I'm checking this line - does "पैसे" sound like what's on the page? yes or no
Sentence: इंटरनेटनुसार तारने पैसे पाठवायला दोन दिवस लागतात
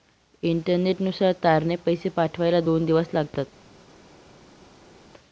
yes